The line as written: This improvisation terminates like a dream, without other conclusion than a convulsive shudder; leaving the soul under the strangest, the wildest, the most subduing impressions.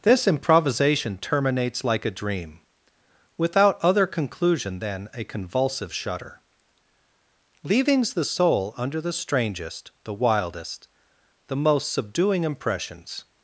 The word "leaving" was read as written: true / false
false